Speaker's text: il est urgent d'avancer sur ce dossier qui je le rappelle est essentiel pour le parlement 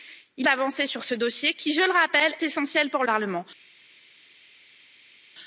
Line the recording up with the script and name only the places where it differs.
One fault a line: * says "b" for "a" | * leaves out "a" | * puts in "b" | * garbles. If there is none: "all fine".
* leaves out "est urgent"
* leaves out "est"
* leaves out "le"